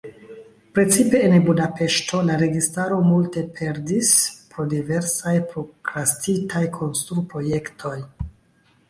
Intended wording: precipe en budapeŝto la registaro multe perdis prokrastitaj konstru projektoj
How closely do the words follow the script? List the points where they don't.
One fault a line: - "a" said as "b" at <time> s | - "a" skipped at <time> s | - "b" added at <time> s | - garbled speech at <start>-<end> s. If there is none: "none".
- "pro diversaj" added at 4.5 s